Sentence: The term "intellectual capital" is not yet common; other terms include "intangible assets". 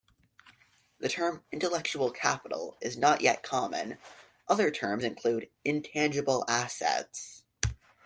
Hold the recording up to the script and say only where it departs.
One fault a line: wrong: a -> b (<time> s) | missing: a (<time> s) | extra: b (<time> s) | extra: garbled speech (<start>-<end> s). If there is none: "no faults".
no faults